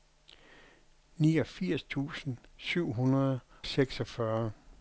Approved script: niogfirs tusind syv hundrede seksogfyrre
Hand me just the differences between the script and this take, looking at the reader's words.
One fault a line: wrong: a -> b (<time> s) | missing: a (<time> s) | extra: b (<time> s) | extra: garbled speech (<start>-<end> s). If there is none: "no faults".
no faults